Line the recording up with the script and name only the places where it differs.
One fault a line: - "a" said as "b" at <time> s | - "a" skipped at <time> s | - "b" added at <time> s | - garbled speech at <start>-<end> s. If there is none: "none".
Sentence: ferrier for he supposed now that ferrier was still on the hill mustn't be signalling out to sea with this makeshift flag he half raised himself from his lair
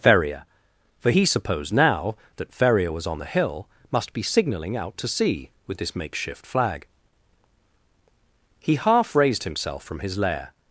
- "still" skipped at 3.1 s
- "mustn't" said as "must" at 3.9 s